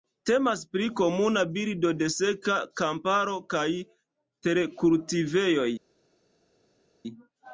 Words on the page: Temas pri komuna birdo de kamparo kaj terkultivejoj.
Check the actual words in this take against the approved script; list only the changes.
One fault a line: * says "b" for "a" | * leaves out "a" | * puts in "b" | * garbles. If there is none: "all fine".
* puts in "seka"